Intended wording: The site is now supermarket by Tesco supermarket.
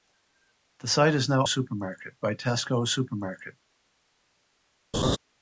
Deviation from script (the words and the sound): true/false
true